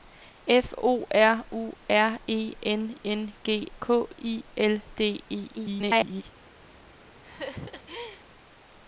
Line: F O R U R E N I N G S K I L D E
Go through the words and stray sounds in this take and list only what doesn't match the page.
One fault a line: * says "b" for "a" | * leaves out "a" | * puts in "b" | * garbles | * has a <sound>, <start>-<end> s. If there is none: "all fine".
* leaves out "I"
* leaves out "S"
* garbles
* has a laugh, 7.2-8.2 s